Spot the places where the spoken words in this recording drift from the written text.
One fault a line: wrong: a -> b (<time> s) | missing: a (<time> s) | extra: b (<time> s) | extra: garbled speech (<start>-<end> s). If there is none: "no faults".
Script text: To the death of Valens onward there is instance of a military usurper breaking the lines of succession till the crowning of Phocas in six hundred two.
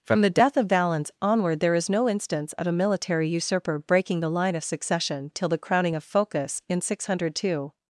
wrong: To -> From (0.0 s)
extra: no (1.9 s)
wrong: lines -> line (4.3 s)